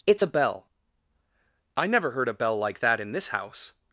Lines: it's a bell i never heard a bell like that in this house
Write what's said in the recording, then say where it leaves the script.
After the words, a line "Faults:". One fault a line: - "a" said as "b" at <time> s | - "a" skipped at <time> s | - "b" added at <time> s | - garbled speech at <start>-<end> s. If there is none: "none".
it's a bell i never heard a bell like that in this house
Faults:
none